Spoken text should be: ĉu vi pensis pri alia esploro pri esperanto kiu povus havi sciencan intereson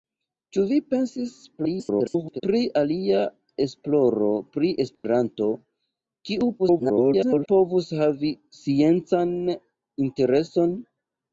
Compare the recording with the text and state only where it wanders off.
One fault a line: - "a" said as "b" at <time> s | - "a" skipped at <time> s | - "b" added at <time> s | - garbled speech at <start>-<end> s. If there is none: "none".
- garbled speech at 1.6-2.4 s
- garbled speech at 6.6-7.5 s